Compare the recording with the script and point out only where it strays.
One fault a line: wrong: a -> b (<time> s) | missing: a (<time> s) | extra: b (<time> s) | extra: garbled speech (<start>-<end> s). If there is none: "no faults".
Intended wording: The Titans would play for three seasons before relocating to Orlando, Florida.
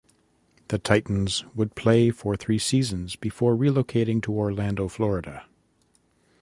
no faults